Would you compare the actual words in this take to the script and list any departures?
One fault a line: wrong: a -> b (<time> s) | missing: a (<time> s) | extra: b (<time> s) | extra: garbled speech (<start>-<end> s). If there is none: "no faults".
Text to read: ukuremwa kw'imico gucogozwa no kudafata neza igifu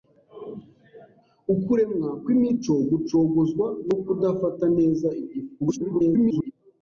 extra: garbled speech (5.6-6.5 s)